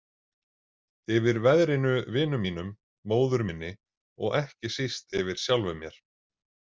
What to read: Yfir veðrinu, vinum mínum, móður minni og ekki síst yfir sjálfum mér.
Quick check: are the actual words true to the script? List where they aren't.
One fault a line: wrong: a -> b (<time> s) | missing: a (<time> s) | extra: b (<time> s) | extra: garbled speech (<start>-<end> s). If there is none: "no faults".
no faults